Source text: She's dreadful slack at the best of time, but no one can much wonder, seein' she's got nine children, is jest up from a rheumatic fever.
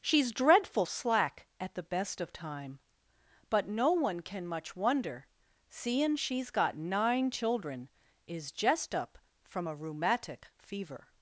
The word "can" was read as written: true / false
true